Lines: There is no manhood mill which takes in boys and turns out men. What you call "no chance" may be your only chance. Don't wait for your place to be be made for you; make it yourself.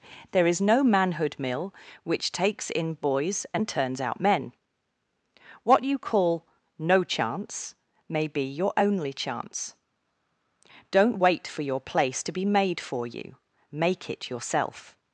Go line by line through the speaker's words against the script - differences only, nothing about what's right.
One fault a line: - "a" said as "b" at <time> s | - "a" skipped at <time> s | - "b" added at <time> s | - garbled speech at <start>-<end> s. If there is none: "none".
- "be" skipped at 12.5 s